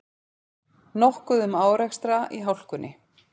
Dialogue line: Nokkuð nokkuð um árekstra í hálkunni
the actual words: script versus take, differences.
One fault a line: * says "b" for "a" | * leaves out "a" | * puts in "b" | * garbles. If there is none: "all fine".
* leaves out "nokkuð"